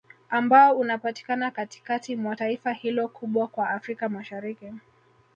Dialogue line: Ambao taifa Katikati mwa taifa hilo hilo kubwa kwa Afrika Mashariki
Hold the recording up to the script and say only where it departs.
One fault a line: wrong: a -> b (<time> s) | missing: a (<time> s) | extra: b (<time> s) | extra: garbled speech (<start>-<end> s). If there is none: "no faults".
wrong: taifa -> unapatikana (0.8 s)
missing: hilo (3.1 s)